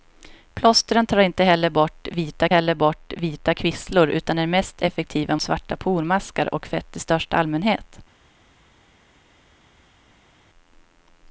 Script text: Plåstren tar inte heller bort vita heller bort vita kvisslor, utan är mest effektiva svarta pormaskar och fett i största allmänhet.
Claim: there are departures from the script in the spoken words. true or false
false